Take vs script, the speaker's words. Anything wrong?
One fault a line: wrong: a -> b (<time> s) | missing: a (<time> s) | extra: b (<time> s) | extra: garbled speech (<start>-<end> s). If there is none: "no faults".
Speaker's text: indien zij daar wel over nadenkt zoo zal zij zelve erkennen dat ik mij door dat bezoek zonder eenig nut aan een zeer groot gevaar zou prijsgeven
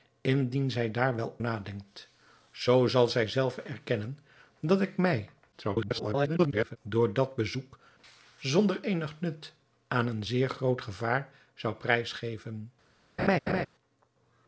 missing: over (1.4 s)
extra: garbled speech (5.5-6.8 s)